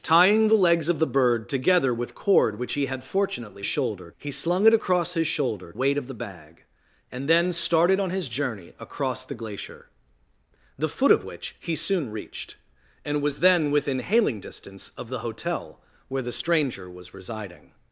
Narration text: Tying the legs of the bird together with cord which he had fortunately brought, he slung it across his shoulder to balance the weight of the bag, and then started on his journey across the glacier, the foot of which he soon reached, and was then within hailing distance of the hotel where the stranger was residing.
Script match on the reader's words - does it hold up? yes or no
no